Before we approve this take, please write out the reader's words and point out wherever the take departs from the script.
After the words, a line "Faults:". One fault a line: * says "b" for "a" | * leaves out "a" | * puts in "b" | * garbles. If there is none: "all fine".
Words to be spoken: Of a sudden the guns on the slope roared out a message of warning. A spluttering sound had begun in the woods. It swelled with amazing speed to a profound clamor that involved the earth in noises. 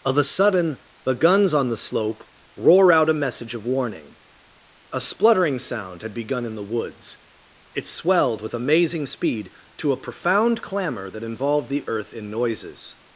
Of a sudden the guns on the slope roar out a message of warning. A spluttering sound had begun in the woods. It swelled with amazing speed to a profound clamor that involved the earth in noises.
Faults:
* says "roar" for "roared"